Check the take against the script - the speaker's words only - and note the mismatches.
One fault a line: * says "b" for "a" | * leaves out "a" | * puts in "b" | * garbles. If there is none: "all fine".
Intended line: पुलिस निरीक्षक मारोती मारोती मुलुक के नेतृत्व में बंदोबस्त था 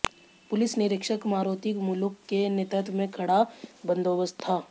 * leaves out "मारोती"
* puts in "कड़ा"